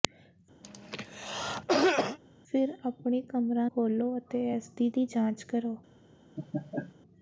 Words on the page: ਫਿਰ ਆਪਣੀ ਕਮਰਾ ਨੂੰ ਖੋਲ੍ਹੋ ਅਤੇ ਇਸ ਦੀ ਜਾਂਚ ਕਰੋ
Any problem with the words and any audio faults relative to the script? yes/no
yes